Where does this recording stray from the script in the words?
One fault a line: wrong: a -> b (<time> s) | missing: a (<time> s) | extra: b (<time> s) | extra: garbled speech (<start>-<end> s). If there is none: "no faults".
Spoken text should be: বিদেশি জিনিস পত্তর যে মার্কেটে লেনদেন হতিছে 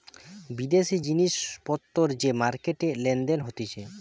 no faults